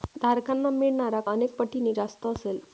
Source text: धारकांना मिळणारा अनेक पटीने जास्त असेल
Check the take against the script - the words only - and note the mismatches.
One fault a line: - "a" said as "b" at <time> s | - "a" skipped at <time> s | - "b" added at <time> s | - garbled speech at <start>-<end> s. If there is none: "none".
none